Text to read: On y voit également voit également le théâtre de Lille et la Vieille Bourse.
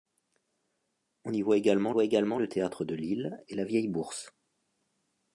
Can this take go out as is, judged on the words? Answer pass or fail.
pass